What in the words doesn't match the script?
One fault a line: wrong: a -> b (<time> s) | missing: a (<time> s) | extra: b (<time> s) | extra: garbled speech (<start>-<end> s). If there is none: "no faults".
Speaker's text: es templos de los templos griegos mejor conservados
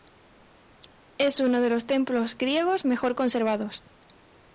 wrong: templos -> uno (1.4 s)